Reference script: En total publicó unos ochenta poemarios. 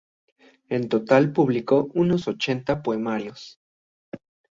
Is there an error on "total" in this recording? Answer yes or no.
no